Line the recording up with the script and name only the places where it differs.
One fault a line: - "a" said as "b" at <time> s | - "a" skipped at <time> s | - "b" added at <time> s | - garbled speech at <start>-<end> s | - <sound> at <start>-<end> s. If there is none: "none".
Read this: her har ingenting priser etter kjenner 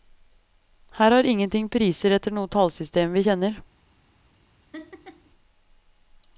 - "noe tallsystem vi" added at 2.4 s
- laugh at 4.7-5.3 s